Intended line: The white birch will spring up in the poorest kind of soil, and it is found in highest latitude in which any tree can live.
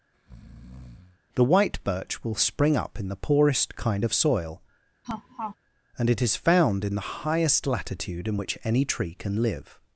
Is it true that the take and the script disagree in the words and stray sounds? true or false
true